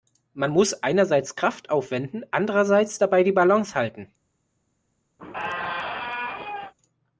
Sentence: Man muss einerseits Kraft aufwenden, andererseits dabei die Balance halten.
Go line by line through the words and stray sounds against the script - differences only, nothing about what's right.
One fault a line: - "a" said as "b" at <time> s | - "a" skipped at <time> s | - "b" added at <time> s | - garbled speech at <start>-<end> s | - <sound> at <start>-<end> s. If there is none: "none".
- squeak at 5.2-6.7 s